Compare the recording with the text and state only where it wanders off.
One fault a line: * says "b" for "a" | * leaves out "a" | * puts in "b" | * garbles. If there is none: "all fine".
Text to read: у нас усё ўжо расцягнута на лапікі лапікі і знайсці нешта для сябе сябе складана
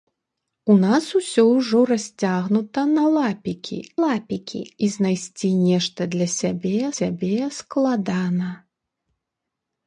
all fine